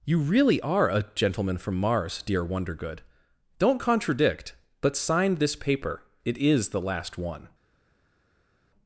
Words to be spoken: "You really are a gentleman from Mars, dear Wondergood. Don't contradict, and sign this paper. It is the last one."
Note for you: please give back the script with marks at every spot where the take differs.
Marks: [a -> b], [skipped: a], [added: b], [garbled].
"You really are a gentleman from Mars, dear Wondergood. Don't contradict, [and -> but] sign this paper. It is the last one."